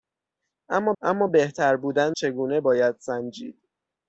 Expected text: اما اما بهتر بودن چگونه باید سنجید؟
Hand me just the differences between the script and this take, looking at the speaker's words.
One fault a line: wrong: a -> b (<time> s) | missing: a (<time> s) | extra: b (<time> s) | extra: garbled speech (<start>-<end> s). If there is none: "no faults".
no faults